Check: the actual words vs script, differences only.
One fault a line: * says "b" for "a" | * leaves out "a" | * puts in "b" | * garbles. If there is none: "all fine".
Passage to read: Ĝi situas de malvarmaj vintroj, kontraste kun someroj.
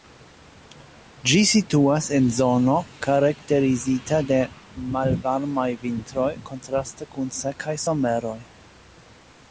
* puts in "en zono karakterizita"
* puts in "sekaj"